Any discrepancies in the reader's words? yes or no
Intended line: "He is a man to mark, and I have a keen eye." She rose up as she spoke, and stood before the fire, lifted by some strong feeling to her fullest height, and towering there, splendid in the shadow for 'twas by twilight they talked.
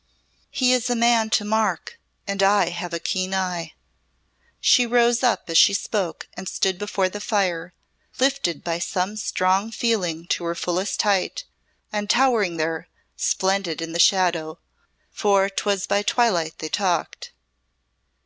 no